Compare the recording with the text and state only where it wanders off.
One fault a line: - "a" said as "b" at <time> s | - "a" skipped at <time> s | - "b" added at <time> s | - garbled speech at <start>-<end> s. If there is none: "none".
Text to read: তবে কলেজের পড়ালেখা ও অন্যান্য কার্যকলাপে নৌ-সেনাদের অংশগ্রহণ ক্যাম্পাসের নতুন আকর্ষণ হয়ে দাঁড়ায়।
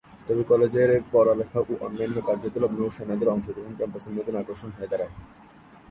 none